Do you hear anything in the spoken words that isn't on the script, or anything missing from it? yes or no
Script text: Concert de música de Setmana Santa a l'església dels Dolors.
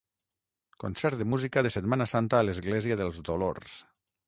no